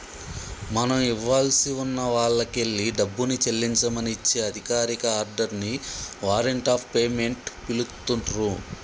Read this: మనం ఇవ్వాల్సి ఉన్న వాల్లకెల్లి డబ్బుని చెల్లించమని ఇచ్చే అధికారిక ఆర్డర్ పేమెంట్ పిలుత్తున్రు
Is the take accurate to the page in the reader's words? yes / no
no